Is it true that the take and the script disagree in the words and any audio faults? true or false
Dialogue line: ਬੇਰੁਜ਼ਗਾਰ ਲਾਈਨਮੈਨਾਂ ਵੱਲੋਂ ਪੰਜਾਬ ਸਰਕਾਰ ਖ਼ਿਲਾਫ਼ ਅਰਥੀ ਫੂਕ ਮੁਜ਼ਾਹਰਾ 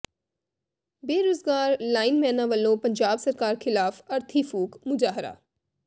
false